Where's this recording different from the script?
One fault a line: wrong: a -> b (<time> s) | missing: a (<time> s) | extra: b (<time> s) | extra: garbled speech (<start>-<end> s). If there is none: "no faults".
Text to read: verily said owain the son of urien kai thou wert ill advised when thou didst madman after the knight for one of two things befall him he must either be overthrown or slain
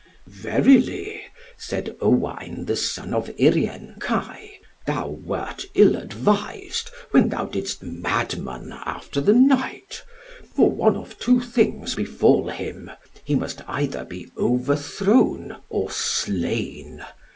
no faults